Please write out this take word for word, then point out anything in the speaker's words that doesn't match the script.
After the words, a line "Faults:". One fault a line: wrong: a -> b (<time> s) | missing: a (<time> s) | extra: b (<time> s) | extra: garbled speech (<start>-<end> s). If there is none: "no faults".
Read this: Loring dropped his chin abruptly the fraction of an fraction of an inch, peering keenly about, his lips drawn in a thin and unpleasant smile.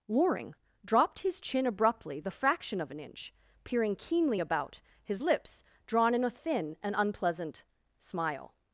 Loring dropped his chin abruptly the fraction of an inch, peering keenly about, his lips drawn in a thin and unpleasant smile.
Faults:
missing: fraction of an (3.0 s)